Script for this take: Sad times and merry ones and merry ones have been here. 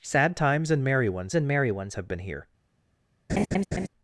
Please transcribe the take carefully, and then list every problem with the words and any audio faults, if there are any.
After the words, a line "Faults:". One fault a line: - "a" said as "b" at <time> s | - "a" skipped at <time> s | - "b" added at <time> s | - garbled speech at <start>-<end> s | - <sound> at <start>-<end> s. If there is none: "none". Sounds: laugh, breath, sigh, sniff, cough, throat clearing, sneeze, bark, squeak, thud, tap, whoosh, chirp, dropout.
Sad times and merry ones and merry ones have been here.
Faults:
- laugh at 3.3-3.9 s